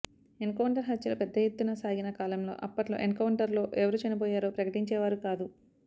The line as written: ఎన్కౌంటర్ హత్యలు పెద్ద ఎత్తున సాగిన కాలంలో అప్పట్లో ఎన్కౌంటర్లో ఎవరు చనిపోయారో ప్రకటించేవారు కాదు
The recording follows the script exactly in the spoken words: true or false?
true